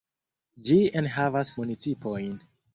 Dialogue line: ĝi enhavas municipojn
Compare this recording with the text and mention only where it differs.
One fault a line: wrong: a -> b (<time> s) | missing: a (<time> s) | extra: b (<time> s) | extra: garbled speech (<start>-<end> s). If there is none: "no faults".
no faults